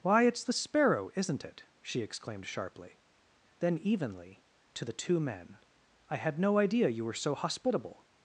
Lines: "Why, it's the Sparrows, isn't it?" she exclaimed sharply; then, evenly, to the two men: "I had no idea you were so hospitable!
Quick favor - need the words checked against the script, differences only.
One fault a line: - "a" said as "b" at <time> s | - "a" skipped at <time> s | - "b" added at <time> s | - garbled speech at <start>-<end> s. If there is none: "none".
- "Sparrows" said as "Sparrow" at 0.5 s